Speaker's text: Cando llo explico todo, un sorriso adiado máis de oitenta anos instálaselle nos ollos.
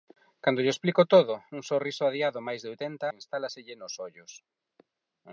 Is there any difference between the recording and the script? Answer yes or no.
yes